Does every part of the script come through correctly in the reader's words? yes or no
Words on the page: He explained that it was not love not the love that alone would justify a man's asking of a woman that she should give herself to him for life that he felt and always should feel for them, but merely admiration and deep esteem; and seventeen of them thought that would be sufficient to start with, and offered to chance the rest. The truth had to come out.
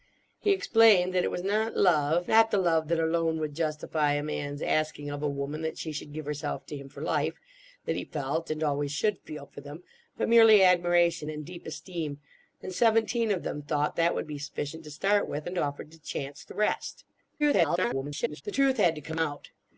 no